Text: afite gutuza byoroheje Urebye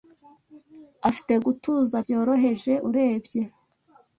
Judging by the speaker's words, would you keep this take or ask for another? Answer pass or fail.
pass